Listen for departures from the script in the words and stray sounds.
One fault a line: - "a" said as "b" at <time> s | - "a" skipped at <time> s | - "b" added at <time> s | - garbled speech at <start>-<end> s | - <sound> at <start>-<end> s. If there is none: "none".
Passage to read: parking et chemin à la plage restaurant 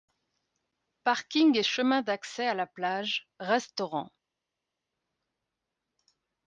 - "d'accès" added at 2.0 s